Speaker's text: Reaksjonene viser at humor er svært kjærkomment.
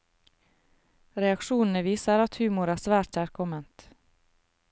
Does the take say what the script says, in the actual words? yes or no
yes